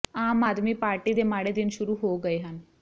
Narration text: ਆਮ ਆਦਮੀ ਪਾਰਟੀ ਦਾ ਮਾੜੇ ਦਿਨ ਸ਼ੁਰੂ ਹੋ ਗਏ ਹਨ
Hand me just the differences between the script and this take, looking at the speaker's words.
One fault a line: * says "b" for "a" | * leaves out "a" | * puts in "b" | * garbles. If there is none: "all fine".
* says "ਦੇ" for "ਦਾ"